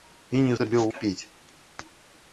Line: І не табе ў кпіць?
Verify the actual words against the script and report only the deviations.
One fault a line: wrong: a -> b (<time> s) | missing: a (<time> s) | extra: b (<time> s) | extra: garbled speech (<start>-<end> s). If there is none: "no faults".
no faults